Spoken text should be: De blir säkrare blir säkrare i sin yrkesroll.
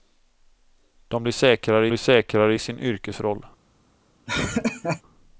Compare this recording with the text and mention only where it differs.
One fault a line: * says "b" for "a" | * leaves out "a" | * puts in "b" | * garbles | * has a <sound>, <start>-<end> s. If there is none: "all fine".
* has a laugh, 4.3-5.0 s